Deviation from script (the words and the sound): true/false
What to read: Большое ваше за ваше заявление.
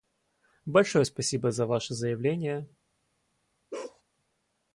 true